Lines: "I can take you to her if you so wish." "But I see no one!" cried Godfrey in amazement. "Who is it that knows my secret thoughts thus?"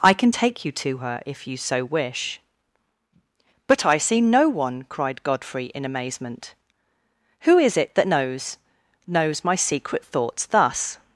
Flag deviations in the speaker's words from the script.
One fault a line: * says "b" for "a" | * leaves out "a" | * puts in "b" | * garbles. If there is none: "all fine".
* puts in "knows"